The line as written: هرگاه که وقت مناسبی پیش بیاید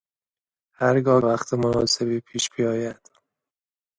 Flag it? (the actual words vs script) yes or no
yes